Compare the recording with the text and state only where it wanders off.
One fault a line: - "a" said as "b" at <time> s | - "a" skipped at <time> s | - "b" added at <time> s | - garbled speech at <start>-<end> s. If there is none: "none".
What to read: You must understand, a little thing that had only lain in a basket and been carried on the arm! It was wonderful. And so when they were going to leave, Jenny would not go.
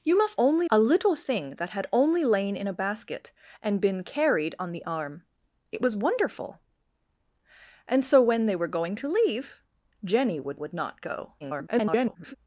- "understand" said as "only" at 0.4 s
- "would" added at 10.5 s
- garbled speech at 11.4-12.4 s